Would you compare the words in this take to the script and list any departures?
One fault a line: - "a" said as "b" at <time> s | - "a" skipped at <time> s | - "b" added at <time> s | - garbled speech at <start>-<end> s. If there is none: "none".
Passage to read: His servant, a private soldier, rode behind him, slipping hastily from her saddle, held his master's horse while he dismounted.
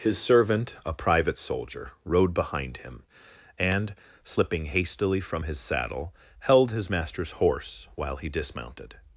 - "and" added at 3.6 s
- "her" said as "his" at 5.4 s